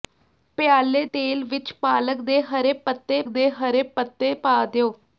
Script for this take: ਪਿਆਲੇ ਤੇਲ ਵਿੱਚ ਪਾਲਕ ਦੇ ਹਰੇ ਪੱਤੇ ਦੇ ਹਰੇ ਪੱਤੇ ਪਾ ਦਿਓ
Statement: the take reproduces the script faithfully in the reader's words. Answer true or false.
true